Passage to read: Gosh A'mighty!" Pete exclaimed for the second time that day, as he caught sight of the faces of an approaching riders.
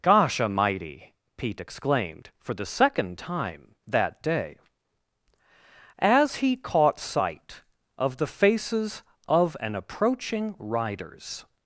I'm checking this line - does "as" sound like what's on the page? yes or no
yes